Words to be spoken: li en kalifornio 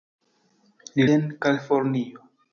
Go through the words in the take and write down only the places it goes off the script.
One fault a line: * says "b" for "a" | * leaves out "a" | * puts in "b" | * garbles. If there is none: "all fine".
all fine